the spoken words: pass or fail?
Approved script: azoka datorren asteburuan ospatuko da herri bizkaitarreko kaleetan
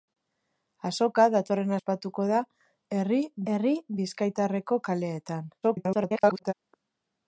fail